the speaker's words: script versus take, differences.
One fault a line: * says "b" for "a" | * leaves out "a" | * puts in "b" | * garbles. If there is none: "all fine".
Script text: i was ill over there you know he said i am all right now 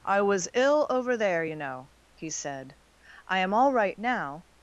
all fine